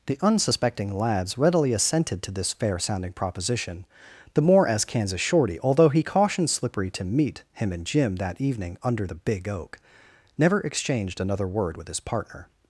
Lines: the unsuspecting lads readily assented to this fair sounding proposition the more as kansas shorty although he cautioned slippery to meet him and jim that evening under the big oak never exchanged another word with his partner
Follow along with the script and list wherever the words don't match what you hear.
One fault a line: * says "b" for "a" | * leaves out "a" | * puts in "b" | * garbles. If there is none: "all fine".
all fine